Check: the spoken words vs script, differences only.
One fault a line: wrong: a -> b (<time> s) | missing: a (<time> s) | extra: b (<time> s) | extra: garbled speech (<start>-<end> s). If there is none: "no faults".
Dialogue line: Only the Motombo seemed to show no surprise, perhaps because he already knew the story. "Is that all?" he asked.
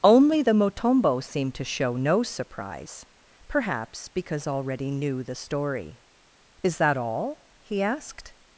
missing: he (4.5 s)